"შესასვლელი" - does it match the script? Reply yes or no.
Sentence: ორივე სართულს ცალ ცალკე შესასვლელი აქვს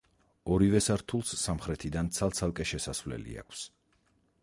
yes